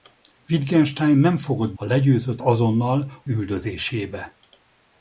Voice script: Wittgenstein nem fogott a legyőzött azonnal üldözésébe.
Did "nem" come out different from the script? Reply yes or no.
no